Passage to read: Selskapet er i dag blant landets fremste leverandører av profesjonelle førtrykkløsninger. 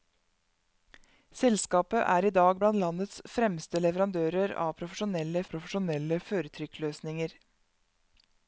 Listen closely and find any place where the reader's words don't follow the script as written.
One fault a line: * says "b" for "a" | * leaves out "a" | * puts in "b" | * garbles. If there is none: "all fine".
* puts in "profesjonelle"